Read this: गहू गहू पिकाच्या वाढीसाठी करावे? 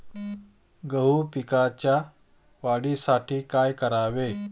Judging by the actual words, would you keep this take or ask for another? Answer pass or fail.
fail